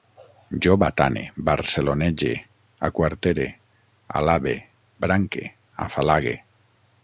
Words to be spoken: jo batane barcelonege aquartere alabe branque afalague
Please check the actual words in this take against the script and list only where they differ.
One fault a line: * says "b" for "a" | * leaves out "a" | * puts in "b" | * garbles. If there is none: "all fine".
all fine